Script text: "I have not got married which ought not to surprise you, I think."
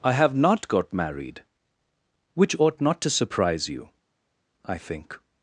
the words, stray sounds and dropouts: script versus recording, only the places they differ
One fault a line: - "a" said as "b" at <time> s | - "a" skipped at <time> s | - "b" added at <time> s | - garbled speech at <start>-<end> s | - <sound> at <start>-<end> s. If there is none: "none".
none